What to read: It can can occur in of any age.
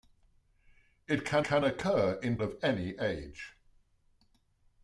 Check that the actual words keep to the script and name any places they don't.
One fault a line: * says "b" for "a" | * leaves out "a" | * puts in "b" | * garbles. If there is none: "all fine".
all fine